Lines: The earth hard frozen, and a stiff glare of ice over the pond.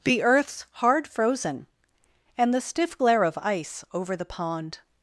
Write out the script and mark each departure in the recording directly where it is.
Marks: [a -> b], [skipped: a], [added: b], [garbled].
The [earth -> earths] hard frozen, and [a -> the] stiff glare of ice over the pond.